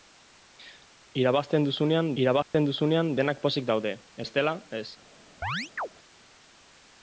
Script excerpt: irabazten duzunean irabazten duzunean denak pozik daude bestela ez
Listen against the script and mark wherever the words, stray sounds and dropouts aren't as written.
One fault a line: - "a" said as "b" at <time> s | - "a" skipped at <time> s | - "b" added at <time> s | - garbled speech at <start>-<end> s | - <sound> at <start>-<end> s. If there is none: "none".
- dropout at 2.4-2.5 s
- chirp at 5.4-5.9 s